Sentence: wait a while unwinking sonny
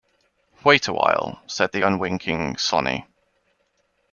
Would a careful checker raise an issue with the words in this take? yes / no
yes